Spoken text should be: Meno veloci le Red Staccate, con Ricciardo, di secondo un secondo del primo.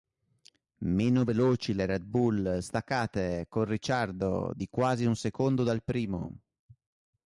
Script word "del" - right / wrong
wrong